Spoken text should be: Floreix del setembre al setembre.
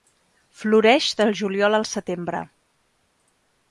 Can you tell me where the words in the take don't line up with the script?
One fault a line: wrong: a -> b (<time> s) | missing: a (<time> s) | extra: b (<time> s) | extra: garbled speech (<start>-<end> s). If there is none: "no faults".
wrong: setembre -> juliol (1.4 s)